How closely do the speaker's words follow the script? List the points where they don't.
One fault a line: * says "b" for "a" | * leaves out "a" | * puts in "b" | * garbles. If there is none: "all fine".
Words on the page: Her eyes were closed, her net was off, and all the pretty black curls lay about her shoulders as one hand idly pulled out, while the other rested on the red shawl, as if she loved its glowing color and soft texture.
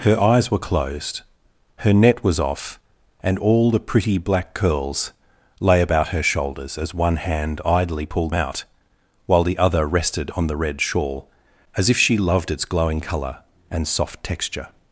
all fine